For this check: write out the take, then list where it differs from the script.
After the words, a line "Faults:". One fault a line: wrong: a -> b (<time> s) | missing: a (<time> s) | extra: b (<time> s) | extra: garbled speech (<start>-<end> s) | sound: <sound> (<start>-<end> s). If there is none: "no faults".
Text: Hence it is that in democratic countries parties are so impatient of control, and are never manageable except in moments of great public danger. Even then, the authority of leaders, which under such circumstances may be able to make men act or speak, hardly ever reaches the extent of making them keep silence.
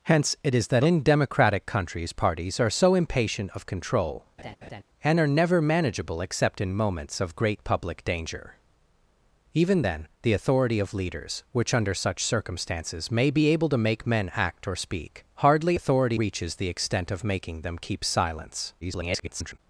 Hence it is that in democratic countries parties are so impatient of control, and are never manageable except in moments of great public danger. Even then, the authority of leaders, which under such circumstances may be able to make men act or speak, hardly authority reaches the extent of making them keep silence. [garbled]
Faults:
sound: laugh (4.4-4.8 s)
wrong: ever -> authority (15.7 s)
extra: garbled speech (18.8-19.6 s)